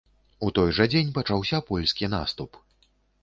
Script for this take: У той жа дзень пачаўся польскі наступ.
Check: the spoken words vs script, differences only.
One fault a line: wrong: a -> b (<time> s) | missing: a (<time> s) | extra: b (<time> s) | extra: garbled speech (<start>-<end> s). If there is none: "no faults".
no faults